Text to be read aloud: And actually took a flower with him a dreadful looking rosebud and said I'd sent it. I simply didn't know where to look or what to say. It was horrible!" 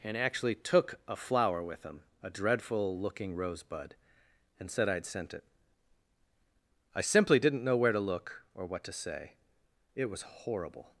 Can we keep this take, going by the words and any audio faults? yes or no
yes